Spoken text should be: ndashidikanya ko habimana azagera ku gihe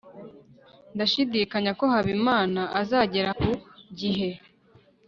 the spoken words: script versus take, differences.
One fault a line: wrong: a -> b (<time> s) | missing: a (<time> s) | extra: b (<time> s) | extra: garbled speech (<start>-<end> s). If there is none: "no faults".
no faults